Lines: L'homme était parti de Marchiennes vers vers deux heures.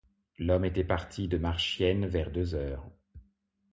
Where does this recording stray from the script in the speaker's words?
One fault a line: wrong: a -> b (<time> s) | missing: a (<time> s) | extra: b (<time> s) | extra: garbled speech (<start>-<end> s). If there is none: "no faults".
missing: vers (2.3 s)